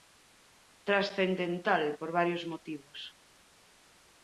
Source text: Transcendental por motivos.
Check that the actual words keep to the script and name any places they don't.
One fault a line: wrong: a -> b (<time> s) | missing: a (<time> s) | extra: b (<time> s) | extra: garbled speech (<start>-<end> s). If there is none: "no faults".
extra: varios (2.1 s)